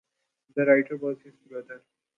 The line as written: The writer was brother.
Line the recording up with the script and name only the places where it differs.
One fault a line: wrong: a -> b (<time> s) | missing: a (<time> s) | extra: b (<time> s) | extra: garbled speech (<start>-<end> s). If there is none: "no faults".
extra: his (1.2 s)